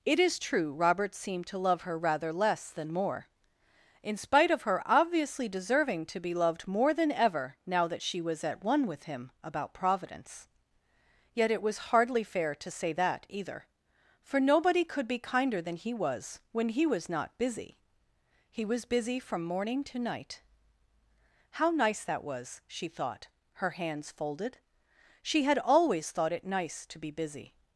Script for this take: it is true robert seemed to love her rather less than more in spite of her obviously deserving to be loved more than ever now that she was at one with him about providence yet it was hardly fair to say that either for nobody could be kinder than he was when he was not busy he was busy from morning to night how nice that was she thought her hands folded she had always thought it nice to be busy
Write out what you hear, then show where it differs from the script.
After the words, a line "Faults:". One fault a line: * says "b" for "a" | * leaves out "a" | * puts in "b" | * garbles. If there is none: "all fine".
it is true robert seemed to love her rather less than more in spite of her obviously deserving to be loved more than ever now that she was at one with him about providence yet it was hardly fair to say that either for nobody could be kinder than he was when he was not busy he was busy from morning to night how nice that was she thought her hands folded she had always thought it nice to be busy
Faults:
all fine